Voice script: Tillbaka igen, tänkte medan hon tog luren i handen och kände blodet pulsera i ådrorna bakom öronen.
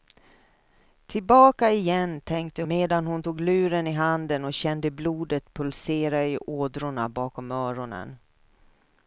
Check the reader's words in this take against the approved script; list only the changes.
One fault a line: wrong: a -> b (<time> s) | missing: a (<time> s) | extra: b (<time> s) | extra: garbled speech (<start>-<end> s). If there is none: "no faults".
no faults